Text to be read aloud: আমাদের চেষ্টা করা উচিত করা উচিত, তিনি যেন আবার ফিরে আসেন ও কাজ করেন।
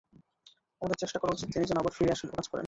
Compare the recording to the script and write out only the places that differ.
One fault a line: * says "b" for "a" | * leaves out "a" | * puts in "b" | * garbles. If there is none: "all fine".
* leaves out "করা উচিত"